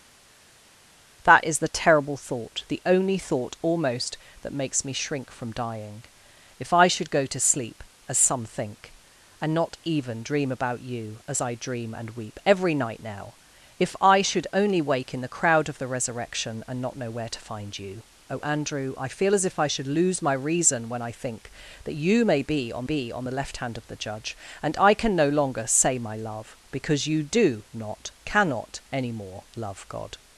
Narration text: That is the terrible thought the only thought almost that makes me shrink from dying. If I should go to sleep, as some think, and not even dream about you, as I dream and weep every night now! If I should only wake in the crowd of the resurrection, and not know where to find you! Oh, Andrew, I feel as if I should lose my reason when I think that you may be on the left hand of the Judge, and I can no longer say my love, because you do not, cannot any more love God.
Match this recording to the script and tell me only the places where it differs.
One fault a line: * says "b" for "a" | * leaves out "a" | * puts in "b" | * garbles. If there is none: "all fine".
* puts in "be on"